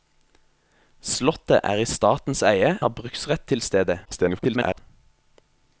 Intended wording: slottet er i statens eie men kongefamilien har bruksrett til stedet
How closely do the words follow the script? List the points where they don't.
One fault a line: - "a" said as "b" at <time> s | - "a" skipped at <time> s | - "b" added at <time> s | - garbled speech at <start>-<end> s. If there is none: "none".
- "men kongefamilien" skipped at 2.7 s
- garbled speech at 4.0-4.8 s